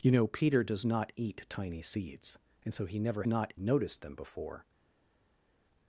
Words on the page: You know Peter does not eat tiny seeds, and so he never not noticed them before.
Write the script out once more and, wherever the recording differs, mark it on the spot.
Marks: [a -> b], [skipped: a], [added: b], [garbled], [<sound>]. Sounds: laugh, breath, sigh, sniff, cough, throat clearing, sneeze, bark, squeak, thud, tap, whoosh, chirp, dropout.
You know Peter does not eat tiny seeds, and so he never not noticed them before.